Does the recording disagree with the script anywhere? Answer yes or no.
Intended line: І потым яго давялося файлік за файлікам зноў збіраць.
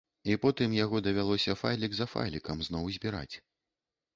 no